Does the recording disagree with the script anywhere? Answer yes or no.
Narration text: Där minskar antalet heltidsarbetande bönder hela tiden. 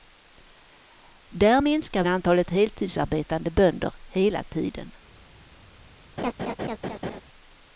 no